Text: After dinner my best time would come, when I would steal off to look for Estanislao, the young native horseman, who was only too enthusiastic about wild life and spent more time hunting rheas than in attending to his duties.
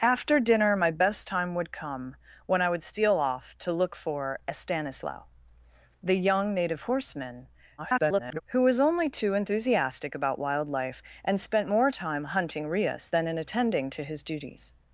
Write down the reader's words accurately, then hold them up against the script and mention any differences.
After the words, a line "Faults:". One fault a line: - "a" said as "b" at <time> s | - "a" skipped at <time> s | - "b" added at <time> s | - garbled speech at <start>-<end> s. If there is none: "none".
After dinner my best time would come, when I would steal off to look for Estanislao, the young native horseman, [garbled] who was only too enthusiastic about wild life and spent more time hunting rheas than in attending to his duties.
Faults:
- garbled speech at 7.8-8.4 s